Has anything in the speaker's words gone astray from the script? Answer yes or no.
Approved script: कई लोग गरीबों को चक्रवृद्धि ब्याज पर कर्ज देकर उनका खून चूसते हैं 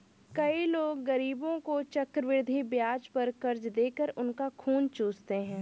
no